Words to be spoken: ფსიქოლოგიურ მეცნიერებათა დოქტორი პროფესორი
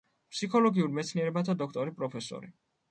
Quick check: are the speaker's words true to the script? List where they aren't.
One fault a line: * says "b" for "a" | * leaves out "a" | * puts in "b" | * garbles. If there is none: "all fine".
all fine